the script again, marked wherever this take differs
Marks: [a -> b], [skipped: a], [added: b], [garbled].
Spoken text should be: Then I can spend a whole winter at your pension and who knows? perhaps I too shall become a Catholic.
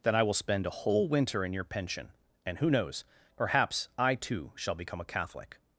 Then I [can -> will] spend a whole winter [at -> in] your pension and who knows? perhaps I too shall become a Catholic.